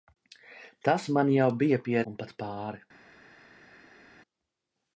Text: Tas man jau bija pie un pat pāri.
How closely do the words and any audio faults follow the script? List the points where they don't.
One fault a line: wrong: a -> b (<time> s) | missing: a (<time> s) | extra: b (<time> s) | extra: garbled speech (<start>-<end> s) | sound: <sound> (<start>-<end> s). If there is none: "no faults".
no faults